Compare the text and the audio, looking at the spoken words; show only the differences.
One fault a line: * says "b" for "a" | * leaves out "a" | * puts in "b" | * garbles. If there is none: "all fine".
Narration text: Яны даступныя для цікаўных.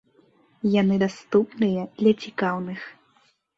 all fine